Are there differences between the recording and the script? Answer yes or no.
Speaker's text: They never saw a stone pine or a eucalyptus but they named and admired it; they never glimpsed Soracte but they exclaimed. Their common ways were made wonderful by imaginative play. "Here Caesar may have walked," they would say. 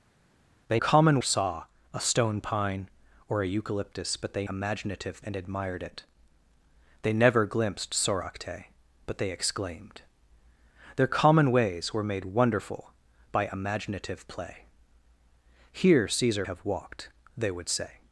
yes